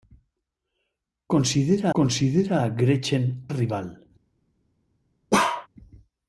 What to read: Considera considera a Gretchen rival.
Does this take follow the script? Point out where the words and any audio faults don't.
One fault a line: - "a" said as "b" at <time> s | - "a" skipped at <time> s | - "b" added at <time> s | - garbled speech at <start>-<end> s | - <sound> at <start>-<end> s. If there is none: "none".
- bark at 5.3-5.7 s